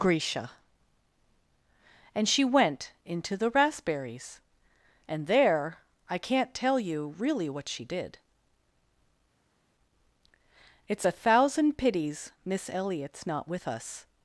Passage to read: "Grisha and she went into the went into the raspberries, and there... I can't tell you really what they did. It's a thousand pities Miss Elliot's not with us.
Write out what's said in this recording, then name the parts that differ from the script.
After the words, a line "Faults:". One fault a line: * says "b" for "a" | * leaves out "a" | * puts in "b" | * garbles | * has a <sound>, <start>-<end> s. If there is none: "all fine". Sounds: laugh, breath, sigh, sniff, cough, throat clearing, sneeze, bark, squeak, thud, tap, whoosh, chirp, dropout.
"Grisha and she went into the raspberries, and there... I can't tell you really what she did. It's a thousand pities Miss Elliot's not with us.
Faults:
* leaves out "went into the"
* says "she" for "they"